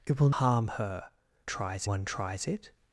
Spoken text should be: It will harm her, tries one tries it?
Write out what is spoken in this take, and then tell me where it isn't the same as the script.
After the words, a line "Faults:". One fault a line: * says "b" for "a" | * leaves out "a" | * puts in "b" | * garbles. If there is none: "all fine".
It will harm her, tries one tries it?
Faults:
all fine